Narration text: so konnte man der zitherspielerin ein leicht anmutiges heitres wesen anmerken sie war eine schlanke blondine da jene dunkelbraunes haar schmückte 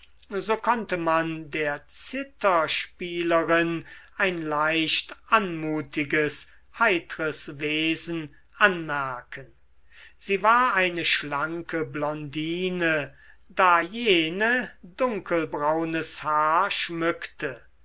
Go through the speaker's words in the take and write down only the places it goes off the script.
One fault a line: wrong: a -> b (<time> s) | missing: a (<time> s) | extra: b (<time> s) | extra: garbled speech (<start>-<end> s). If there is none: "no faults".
no faults